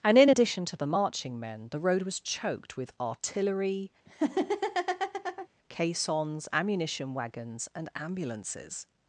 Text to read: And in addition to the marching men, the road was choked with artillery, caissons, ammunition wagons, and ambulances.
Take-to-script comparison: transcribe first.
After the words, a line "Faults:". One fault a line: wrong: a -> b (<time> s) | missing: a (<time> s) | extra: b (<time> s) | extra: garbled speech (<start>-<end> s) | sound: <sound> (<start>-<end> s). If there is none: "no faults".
And in addition to the marching men, the road was choked with artillery, caissons, ammunition wagons, and ambulances.
Faults:
sound: laugh (4.1-5.5 s)